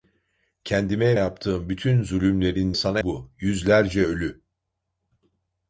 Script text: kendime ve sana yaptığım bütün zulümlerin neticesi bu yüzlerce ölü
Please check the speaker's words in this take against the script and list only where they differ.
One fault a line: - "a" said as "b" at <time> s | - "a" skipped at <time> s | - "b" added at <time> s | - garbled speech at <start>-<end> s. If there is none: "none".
- "ve sana" skipped at 1.2 s
- "neticesi" said as "sana" at 2.7 s